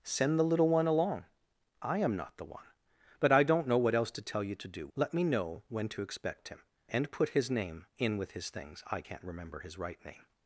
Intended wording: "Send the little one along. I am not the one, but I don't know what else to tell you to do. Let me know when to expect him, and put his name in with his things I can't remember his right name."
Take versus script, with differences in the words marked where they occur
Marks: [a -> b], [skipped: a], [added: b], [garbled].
"Send the little one along. I am not the one, but I don't know what else to tell you to do. Let me know when to expect him, and put his name in with his things I can't remember his right name."